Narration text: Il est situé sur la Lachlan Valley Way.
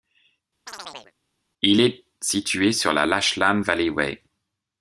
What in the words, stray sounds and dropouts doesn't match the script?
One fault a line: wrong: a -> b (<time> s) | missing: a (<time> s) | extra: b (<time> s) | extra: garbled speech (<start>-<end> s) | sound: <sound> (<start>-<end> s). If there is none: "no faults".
sound: chirp (0.7-1.1 s)